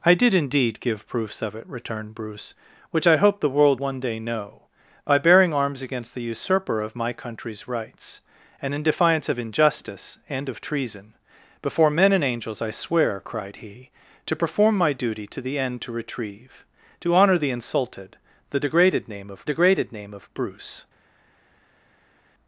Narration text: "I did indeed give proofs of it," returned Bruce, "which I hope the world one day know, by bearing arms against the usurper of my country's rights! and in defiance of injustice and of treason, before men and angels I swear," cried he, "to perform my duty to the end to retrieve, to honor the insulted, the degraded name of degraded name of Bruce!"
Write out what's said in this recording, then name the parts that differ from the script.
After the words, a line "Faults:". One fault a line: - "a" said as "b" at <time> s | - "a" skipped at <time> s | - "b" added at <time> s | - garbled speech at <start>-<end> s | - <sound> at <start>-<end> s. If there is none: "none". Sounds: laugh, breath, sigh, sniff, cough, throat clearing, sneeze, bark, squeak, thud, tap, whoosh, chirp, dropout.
"I did indeed give proofs of it," returned Bruce, "which I hope the world one day know, by bearing arms against the usurper of my country's rights! and in defiance of injustice and of treason, before men and angels I swear," cried he, "to perform my duty to the end to retrieve, to honor the insulted, the degraded name of degraded name of Bruce!"
Faults:
none